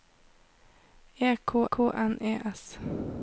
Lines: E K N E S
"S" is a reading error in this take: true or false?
false